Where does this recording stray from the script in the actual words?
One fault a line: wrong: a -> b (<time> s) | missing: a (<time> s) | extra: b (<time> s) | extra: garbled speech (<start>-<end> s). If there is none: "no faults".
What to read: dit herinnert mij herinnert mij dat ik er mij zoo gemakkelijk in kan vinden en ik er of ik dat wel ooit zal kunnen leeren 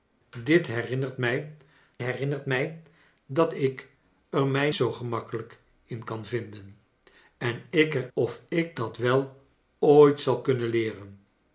no faults